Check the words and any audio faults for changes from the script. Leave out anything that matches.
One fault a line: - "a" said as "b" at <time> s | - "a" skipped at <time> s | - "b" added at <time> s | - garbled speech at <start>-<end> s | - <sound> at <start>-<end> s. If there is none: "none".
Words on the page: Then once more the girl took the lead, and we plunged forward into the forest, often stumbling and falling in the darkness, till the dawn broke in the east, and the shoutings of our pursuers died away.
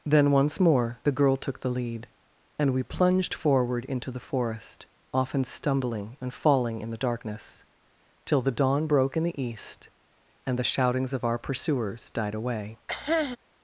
- cough at 12.9-13.4 s